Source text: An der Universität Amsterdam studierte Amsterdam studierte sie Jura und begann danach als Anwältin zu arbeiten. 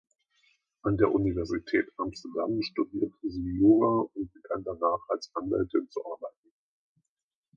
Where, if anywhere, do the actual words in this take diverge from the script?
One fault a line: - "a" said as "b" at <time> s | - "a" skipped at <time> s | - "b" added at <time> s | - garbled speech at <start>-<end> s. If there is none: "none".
- "Amsterdam studierte" skipped at 3.3 s